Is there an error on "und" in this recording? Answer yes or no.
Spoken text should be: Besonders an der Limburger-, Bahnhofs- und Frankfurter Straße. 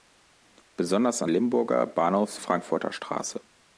yes